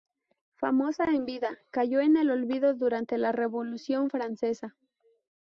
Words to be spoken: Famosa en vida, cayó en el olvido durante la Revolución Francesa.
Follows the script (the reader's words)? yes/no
yes